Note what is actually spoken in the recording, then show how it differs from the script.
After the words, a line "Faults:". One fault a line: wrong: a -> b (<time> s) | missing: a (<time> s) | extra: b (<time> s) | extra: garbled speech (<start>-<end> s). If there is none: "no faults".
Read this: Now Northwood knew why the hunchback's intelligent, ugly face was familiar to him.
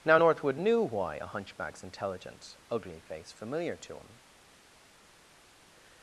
Now Northwood knew why a hunchback's intelligent, ugly face familiar to him.
Faults:
wrong: the -> a (1.1 s)
missing: was (3.3 s)